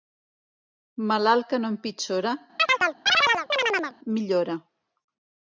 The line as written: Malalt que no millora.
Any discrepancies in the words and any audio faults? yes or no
yes